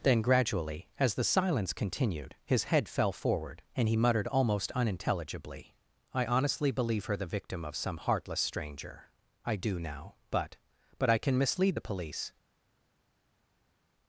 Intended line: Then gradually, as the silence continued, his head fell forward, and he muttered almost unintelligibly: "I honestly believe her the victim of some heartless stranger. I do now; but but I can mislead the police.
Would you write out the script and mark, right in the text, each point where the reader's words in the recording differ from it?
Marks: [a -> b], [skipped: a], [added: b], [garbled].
Then gradually, as the silence continued, his head fell forward, and he muttered almost unintelligibly: "I honestly believe her the victim of some heartless stranger. I do now; but but I can mislead the police.